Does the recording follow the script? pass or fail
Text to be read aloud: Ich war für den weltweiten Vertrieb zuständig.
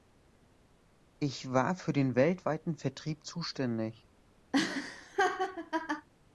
pass